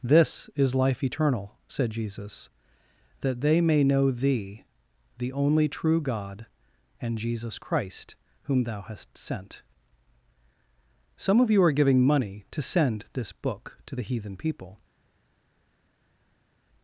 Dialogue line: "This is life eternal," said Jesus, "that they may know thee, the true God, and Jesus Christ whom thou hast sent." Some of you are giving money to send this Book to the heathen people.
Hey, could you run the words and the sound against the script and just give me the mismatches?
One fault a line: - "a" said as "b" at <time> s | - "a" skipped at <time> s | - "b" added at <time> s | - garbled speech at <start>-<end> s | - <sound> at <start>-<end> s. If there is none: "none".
- "only" added at 5.3 s